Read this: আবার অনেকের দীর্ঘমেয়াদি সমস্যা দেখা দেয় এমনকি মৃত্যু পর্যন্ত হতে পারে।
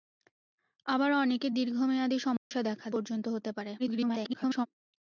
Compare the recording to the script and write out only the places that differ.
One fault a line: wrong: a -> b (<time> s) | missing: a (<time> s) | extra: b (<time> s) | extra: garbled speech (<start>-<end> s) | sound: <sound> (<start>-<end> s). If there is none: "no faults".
sound: dropout (2.4-2.5 s)
missing: দেয় এমনকি মৃত্যু (2.9 s)
extra: garbled speech (3.8-4.7 s)